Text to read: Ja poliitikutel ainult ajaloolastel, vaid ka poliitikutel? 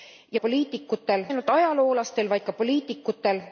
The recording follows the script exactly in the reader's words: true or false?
true